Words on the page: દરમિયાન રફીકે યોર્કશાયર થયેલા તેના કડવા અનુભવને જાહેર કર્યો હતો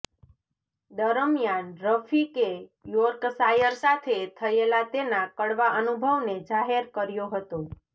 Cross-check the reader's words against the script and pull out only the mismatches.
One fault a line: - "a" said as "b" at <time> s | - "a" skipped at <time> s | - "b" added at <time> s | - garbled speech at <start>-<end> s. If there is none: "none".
- "સાથે" added at 3.8 s